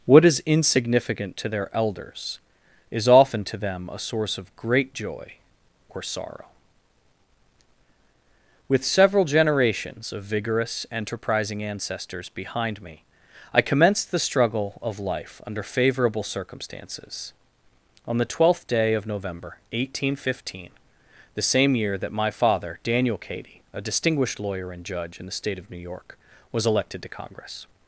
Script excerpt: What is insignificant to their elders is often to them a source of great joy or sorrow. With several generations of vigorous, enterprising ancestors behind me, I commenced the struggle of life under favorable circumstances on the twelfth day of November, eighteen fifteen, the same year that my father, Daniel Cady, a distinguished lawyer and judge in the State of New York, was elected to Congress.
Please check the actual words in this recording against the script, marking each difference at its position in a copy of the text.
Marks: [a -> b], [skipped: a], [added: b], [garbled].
What is insignificant to their elders is often to them a source of great joy or sorrow. With several generations of vigorous, enterprising ancestors behind me, I commenced the struggle of life under favorable circumstances on the twelfth day of November, eighteen fifteen, the same year that my father, Daniel Cady, a distinguished lawyer and judge in the State of New York, was elected to Congress.